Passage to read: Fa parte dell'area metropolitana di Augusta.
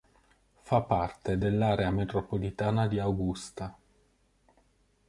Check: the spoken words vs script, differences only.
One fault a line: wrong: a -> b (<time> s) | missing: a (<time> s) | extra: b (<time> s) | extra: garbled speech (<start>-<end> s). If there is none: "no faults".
no faults